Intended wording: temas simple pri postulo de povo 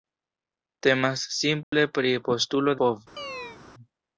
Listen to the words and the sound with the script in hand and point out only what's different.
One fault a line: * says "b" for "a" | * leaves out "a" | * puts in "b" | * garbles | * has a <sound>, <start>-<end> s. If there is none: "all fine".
* has a dropout, 1.6-1.7 s
* leaves out "de"
* has a chirp, 3.2-3.6 s